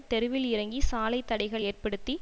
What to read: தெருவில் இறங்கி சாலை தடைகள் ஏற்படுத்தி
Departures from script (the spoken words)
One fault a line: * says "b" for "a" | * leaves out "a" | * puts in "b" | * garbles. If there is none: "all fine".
all fine